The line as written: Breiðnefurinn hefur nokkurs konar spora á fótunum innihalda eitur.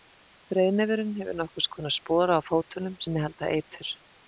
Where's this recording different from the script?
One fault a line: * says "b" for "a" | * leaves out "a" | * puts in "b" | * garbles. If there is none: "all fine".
all fine